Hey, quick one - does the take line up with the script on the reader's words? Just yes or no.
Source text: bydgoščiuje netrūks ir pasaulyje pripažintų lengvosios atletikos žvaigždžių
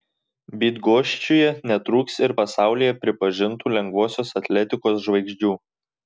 yes